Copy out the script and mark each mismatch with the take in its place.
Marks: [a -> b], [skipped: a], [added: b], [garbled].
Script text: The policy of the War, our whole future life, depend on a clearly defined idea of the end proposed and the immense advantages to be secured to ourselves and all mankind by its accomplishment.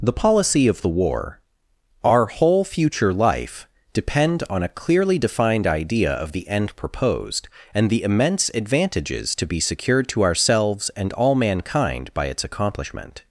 The policy of the War, our whole future life, depend on a clearly defined idea of the end proposed and the immense advantages to be secured to ourselves and all mankind by its accomplishment.